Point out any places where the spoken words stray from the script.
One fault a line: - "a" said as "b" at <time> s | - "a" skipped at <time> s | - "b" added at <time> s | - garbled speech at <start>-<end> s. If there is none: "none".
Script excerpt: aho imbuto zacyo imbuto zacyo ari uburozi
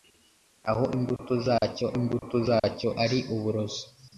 none